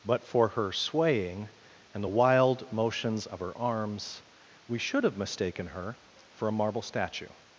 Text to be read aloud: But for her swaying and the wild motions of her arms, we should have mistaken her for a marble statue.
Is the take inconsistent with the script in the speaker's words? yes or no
no